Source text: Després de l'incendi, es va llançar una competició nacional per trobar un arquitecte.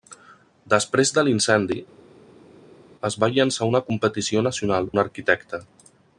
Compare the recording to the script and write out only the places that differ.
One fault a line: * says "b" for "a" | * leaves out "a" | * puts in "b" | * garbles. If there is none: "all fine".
* leaves out "per trobar"